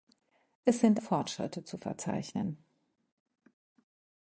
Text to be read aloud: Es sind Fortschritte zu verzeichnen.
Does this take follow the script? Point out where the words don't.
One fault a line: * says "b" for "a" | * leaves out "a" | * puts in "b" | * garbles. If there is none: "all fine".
all fine